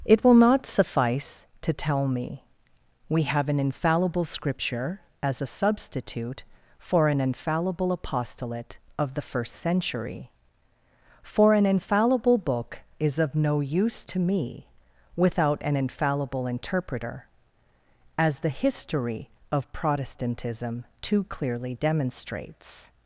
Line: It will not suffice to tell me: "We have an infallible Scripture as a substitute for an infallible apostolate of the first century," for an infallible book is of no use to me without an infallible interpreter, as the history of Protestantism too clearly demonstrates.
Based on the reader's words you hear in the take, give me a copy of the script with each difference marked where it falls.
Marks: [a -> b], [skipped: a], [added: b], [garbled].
It will not suffice to tell me: "We have an infallible Scripture as a substitute for an infallible apostolate of the first century," for an infallible book is of no use to me without an infallible interpreter, as the history of Protestantism too clearly demonstrates.